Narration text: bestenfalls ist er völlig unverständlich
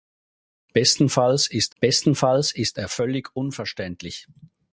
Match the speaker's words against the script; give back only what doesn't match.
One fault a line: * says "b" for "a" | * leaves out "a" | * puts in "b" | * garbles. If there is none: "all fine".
* puts in "bestenfalls ist"